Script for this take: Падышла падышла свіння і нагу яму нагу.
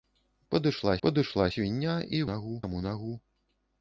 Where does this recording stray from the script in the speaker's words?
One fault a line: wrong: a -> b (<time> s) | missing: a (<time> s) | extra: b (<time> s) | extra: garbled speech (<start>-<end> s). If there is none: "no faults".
no faults